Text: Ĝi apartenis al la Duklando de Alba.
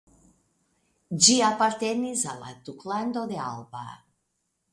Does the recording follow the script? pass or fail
pass